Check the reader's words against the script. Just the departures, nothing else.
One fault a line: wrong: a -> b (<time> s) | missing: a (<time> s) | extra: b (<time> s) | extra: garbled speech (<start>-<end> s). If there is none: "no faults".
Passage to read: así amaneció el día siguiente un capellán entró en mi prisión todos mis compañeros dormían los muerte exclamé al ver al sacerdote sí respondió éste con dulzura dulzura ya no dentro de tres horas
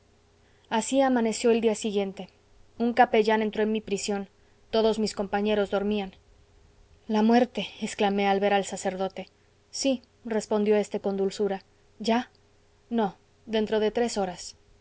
wrong: los -> la (7.1 s)
missing: dulzura (11.6 s)